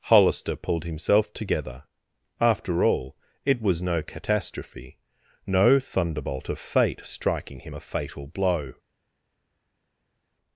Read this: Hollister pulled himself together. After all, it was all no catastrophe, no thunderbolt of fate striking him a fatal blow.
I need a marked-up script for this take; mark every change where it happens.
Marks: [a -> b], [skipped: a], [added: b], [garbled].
Hollister pulled himself together. After all, it was [skipped: all] no catastrophe, no thunderbolt of fate striking him a fatal blow.